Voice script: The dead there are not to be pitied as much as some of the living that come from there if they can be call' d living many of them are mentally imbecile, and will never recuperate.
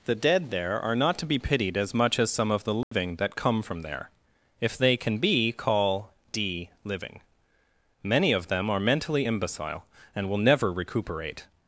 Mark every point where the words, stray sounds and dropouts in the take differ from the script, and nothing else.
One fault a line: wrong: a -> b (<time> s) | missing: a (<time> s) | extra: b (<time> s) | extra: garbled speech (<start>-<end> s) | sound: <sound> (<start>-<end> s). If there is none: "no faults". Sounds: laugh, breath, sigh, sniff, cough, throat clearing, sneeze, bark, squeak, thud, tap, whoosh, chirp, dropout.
sound: dropout (2.8-2.9 s)